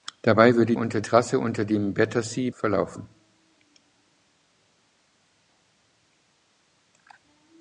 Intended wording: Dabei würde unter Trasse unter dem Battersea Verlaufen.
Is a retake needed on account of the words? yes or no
no